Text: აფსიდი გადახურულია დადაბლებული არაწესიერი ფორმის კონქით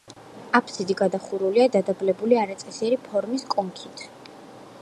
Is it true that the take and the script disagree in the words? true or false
false